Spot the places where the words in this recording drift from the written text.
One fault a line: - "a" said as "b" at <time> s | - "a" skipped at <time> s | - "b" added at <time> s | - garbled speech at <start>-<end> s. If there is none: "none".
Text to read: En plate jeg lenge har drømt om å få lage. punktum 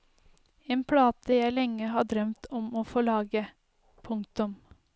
none